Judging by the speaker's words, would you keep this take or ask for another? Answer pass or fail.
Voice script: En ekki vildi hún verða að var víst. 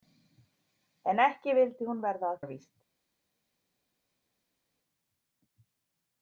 pass